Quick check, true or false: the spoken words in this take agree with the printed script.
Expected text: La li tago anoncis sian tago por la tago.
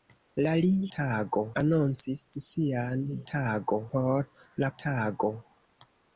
true